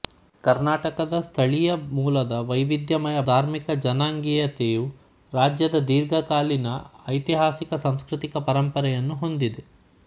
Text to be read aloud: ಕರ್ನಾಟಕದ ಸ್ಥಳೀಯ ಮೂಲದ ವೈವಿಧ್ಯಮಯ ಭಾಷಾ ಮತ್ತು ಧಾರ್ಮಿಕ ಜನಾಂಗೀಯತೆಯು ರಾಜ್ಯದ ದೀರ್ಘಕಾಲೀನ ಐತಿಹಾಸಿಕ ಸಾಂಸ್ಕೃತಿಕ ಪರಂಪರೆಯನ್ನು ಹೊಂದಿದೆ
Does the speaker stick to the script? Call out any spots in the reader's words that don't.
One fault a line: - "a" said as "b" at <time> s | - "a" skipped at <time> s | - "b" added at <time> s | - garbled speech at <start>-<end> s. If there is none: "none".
- "ಭಾಷಾ ಮತ್ತು" skipped at 3.2 s